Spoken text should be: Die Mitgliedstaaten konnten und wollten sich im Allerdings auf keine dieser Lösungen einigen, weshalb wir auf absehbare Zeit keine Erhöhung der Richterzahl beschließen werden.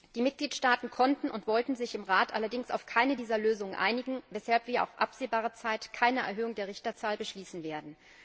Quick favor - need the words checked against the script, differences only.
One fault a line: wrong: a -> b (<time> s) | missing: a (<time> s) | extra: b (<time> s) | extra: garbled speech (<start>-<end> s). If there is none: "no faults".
extra: Rat (2.0 s)